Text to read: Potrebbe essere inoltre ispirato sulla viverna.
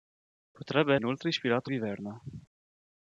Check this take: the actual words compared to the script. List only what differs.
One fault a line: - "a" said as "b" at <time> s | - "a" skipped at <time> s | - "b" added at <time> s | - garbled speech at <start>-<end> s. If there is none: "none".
- "essere" skipped at 0.9 s
- "sulla" skipped at 1.7 s